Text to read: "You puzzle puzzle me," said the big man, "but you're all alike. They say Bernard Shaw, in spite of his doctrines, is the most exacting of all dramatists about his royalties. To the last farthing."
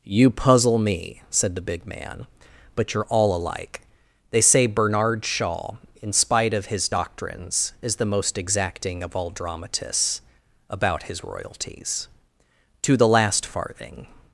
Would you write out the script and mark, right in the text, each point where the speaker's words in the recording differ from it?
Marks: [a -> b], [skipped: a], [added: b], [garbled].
"You puzzle [skipped: puzzle] me," said the big man, "but you're all alike. They say Bernard Shaw, in spite of his doctrines, is the most exacting of all dramatists about his royalties. To the last farthing."